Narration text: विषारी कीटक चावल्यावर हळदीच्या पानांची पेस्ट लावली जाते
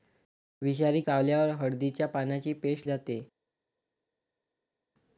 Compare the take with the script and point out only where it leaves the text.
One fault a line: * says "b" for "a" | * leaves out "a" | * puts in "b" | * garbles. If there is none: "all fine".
* leaves out "कीटक"
* leaves out "लावली"